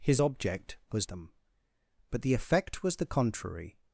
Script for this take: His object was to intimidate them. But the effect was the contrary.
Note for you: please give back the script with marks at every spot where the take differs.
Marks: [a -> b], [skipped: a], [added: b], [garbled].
His object was [skipped: to intimidate] them. But the effect was the contrary.